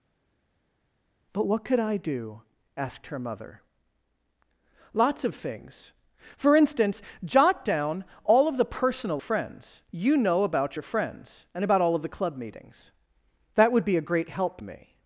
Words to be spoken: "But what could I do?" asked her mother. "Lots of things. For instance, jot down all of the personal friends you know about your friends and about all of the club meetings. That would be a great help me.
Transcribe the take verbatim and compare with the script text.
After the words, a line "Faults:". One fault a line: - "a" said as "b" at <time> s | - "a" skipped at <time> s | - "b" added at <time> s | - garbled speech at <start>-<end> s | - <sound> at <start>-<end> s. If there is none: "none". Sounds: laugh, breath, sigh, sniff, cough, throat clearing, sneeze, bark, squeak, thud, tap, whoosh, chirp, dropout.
"But what could I do?" asked her mother. "Lots of things. For instance, jot down all of the personal friends you know about your friends and about all of the club meetings. That would be a great help me.
Faults:
none